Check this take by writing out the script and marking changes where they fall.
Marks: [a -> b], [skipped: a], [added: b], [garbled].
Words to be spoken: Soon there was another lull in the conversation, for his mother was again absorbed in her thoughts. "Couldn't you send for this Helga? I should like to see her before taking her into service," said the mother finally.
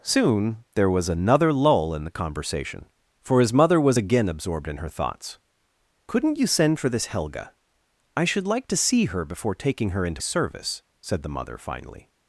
Soon there was another lull in the conversation, for his mother was again absorbed in her thoughts. "Couldn't you send for this Helga? I should like to see her before taking her into service," said the mother finally.